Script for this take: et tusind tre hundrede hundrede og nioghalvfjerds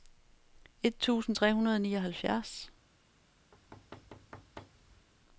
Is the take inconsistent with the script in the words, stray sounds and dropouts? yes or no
yes